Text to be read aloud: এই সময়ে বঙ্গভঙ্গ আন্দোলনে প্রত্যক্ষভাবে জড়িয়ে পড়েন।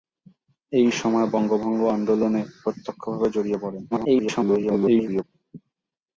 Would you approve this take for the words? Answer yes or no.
no